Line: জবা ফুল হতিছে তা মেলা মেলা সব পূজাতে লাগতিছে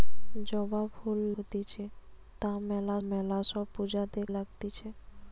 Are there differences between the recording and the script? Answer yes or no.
no